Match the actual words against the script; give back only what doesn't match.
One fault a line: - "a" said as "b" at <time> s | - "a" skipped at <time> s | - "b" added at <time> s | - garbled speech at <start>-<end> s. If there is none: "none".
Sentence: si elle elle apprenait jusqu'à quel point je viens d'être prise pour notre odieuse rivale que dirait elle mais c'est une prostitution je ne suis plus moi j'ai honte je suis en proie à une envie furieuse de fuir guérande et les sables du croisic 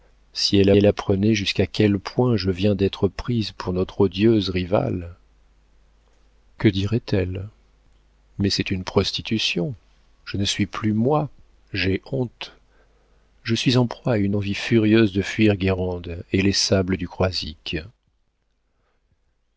none